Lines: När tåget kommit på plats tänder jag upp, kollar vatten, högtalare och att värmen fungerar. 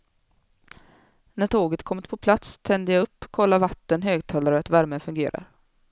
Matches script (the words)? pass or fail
pass